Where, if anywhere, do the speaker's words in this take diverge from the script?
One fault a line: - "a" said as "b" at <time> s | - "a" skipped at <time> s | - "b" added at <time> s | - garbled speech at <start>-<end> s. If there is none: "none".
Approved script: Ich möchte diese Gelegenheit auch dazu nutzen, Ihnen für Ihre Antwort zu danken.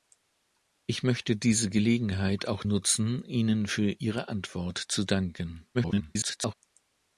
- "dazu" skipped at 2.6 s
- garbled speech at 5.7-6.5 s